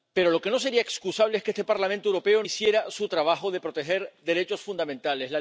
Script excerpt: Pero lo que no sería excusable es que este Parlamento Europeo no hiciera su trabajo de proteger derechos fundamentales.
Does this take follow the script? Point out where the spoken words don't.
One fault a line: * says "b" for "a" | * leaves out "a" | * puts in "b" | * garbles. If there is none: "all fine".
* leaves out "no"